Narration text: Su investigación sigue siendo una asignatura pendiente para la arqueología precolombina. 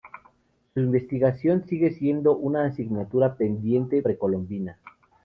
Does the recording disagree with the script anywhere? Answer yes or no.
yes